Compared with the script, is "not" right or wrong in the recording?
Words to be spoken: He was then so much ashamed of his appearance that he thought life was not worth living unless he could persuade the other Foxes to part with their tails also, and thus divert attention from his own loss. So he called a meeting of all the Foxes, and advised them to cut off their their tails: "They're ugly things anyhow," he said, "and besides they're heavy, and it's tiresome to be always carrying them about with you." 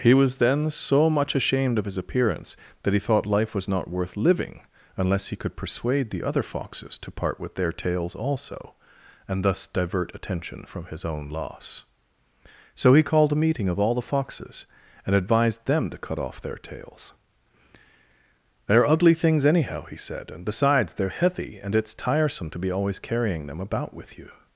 right